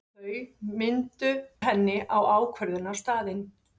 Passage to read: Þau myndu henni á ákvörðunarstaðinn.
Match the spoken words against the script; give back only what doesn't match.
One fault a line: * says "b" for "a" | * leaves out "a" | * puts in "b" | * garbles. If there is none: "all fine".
all fine